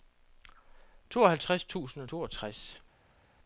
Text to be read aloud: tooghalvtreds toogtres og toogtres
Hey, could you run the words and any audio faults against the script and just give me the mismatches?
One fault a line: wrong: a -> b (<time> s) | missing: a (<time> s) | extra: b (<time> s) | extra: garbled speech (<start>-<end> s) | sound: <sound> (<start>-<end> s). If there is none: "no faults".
wrong: toogtres -> tusind (1.6 s)